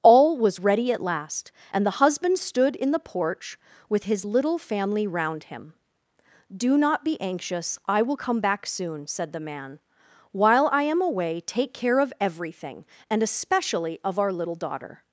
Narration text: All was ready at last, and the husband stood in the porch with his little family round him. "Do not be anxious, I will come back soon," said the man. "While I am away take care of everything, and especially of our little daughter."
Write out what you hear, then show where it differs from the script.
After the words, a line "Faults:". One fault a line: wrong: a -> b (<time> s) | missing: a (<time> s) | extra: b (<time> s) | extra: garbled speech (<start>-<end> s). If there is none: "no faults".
All was ready at last, and the husband stood in the porch with his little family round him. "Do not be anxious, I will come back soon," said the man. "While I am away take care of everything, and especially of our little daughter."
Faults:
no faults